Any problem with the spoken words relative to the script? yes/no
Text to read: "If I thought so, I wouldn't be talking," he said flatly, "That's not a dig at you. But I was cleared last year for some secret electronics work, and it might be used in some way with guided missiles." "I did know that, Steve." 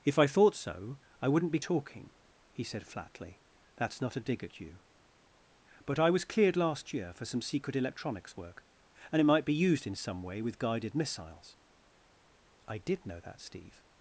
no